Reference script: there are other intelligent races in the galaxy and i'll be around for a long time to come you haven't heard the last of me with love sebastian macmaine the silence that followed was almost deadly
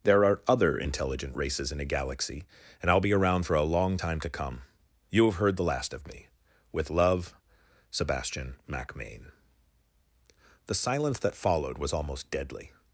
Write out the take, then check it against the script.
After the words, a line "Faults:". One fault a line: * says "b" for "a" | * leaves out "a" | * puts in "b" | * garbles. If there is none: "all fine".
there are other intelligent races in a galaxy and i'll be around for a long time to come you have heard the last of me with love sebastian macmaine the silence that followed was almost deadly
Faults:
* says "a" for "the"
* says "have" for "haven't"